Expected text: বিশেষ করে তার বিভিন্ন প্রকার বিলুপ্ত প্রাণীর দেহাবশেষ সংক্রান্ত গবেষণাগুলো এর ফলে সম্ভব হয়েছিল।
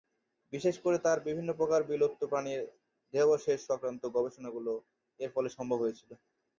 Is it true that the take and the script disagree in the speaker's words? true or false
false